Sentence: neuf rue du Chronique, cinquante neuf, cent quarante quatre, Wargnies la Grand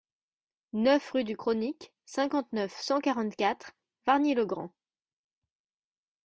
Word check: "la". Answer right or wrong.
wrong